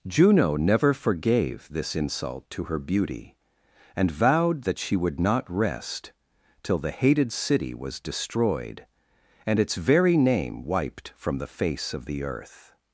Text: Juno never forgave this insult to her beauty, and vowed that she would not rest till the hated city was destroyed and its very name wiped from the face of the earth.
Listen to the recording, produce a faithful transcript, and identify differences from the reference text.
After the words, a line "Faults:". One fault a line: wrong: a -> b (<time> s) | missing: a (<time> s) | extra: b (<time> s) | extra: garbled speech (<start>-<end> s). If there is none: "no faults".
Juno never forgave this insult to her beauty, and vowed that she would not rest till the hated city was destroyed and its very name wiped from the face of the earth.
Faults:
no faults